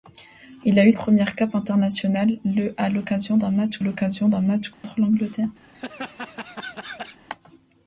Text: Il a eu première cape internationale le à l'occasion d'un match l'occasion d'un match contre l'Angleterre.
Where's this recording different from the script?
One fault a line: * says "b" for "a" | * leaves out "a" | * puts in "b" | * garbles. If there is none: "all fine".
all fine